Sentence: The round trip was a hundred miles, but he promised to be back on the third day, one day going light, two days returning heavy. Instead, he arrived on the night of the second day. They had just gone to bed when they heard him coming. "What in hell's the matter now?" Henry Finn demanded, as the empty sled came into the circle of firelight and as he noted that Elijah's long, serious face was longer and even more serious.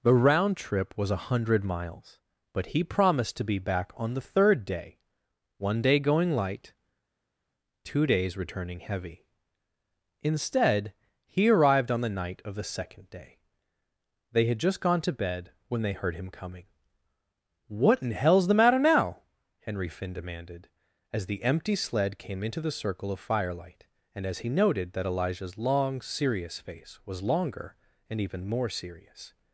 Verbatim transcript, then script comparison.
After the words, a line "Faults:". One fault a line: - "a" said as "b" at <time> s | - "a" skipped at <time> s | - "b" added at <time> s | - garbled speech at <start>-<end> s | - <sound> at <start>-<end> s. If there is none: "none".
The round trip was a hundred miles, but he promised to be back on the third day, one day going light, two days returning heavy. Instead, he arrived on the night of the second day. They had just gone to bed when they heard him coming. "What in hell's the matter now?" Henry Finn demanded, as the empty sled came into the circle of firelight and as he noted that Elijah's long, serious face was longer and even more serious.
Faults:
none